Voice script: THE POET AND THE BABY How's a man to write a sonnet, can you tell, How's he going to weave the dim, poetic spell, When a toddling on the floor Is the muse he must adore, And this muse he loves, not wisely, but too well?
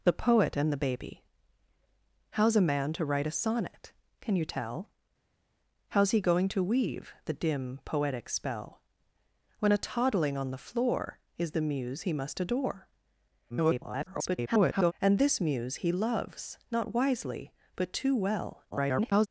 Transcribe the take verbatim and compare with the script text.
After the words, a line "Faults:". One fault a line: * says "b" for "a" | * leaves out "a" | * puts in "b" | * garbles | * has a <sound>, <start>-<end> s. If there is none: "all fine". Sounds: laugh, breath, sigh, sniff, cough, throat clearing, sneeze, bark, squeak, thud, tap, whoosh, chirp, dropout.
THE POET AND THE BABY How's a man to write a sonnet, can you tell, How's he going to weave the dim, poetic spell, When a toddling on the floor Is the muse he must adore, [garbled] And this muse he loves, not wisely, but too well? [garbled]
Faults:
* garbles
* garbles